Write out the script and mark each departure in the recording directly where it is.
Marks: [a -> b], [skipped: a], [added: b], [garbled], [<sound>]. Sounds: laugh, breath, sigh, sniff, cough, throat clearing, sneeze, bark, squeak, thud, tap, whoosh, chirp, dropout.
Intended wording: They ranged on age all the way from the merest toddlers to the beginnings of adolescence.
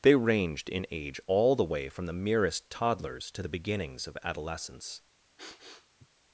They ranged [on -> in] age all the way from the merest toddlers to the beginnings of adolescence. [sniff]